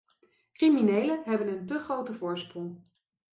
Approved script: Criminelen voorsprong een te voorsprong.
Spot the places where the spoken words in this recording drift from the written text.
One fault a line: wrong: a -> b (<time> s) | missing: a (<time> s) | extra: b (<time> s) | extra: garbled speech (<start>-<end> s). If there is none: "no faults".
wrong: voorsprong -> hebben (1.2 s)
extra: grote (1.8 s)